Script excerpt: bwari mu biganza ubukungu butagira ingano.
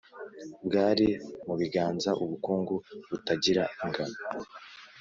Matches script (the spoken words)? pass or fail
pass